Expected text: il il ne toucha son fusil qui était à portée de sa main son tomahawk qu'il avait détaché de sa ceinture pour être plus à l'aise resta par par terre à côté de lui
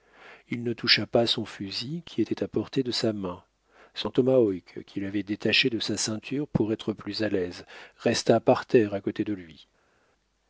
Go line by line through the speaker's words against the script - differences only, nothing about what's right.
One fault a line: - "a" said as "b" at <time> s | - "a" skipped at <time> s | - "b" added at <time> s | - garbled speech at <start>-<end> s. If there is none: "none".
- "il" skipped at 0.6 s
- "pas" added at 1.1 s
- "par" skipped at 8.6 s